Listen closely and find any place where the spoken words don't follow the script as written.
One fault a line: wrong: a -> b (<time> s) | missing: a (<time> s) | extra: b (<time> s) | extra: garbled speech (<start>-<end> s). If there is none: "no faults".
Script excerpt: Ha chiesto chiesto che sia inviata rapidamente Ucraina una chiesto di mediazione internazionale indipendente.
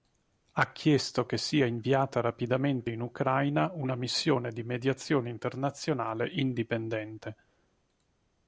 missing: chiesto (1.3 s)
extra: in (2.9 s)
wrong: chiesto -> missione (3.9 s)